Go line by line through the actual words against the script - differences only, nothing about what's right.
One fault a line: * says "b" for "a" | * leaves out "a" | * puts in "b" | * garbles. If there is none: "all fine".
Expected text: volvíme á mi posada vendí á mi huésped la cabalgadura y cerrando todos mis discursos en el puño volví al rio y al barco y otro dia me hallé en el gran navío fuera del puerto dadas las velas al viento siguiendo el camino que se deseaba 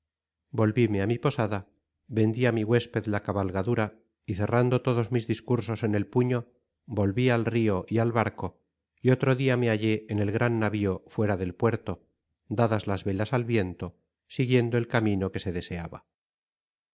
all fine